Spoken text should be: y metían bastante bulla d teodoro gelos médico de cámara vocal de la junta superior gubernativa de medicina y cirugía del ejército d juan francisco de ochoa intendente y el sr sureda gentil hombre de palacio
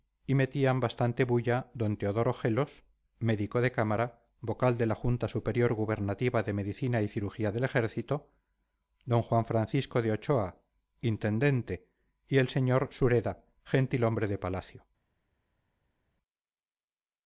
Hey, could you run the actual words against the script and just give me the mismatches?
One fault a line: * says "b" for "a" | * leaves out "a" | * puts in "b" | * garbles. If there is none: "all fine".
all fine